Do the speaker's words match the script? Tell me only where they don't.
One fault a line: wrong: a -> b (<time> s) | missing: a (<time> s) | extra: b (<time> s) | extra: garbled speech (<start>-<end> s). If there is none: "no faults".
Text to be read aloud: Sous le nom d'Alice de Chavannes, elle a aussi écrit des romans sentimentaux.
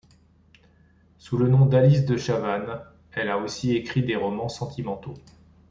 no faults